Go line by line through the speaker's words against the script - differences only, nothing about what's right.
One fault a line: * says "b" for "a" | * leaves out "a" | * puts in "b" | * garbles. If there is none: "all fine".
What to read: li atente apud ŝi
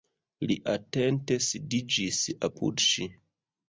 * puts in "sidiĝis"